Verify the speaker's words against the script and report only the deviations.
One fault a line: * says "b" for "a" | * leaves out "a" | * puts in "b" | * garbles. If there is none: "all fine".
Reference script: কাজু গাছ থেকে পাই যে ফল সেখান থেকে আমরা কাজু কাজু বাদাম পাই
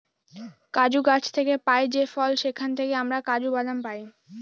* leaves out "কাজু"